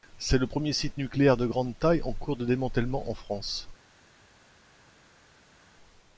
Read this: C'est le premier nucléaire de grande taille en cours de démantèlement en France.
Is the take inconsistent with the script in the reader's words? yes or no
yes